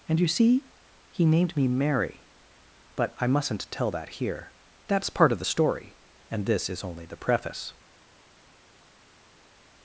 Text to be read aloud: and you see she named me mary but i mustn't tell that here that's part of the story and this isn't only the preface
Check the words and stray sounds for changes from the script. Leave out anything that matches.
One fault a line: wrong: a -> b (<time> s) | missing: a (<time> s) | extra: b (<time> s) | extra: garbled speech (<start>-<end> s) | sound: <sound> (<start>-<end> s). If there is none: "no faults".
wrong: she -> he (1.1 s)
wrong: isn't -> is (6.7 s)